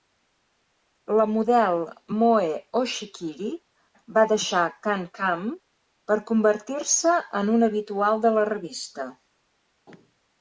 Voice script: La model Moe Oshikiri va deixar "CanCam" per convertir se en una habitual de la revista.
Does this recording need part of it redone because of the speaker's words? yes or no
no